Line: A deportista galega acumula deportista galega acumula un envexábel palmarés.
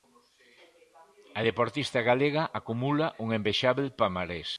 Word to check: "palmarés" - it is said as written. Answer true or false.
true